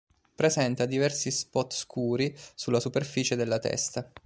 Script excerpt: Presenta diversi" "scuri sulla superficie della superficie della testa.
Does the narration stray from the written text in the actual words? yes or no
yes